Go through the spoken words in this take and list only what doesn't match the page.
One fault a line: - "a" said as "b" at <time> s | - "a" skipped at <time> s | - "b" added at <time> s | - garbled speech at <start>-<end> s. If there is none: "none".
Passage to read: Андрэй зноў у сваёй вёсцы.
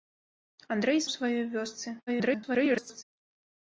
- "зноў" skipped at 1.0 s
- garbled speech at 2.1-3.0 s